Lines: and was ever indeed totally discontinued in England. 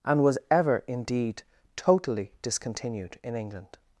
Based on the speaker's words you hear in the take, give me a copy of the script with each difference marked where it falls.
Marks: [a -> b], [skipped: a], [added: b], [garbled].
and was ever indeed totally discontinued in England.